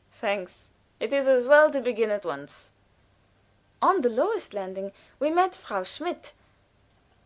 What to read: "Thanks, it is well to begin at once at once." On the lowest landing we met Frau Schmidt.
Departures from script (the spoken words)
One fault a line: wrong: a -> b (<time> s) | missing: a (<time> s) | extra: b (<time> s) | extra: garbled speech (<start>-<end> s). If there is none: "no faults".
extra: as (1.3 s)
missing: at once (2.7 s)